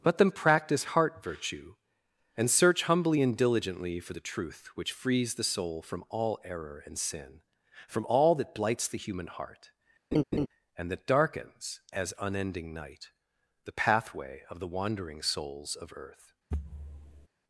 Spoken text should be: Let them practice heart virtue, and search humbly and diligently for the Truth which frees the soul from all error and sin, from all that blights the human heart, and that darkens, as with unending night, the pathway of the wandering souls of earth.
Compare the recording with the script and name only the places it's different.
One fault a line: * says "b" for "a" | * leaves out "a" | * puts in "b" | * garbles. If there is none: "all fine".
* leaves out "with"